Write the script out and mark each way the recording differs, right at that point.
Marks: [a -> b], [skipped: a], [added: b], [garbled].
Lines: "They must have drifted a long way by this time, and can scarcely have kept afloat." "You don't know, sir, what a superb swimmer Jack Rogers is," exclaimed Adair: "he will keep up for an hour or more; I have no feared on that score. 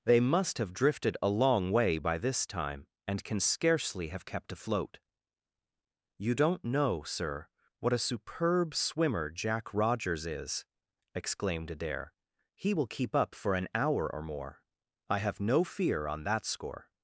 "They must have drifted a long way by this time, and can scarcely have kept afloat." "You don't know, sir, what a superb swimmer Jack Rogers is," exclaimed Adair: "he will keep up for an hour or more; I have no [feared -> fear] on that score.